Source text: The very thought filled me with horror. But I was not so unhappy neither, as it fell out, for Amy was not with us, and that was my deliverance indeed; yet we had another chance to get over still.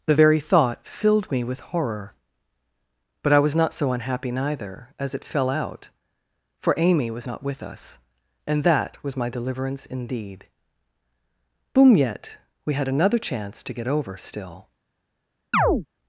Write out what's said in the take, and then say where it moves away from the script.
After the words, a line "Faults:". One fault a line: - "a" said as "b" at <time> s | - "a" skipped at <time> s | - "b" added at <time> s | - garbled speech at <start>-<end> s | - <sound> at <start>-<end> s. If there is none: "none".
The very thought filled me with horror. But I was not so unhappy neither, as it fell out, for Amy was not with us, and that was my deliverance indeed; boom yet we had another chance to get over still.
Faults:
- "boom" added at 11.7 s
- chirp at 15.5-15.9 s